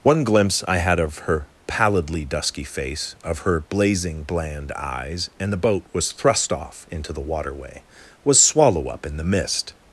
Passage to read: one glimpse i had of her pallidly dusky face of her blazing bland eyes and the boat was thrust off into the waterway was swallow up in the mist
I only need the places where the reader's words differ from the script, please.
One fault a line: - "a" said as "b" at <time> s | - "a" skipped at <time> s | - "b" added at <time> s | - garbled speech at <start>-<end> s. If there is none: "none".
none